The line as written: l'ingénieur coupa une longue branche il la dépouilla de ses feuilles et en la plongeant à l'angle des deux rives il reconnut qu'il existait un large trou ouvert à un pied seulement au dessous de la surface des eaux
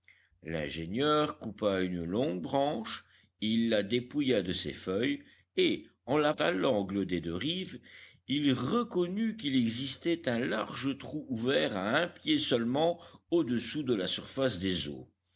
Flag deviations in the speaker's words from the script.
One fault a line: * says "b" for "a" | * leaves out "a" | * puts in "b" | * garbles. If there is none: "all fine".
* leaves out "plongeant"